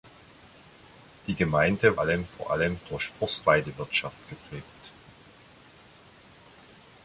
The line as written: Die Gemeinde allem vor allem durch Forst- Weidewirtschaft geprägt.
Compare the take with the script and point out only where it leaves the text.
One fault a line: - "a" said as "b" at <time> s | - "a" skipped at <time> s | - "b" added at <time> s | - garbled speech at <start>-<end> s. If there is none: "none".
none